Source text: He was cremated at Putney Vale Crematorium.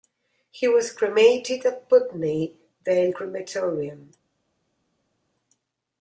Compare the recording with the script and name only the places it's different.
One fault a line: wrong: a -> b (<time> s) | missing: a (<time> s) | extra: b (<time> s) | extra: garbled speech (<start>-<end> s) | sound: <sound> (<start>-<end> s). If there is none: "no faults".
no faults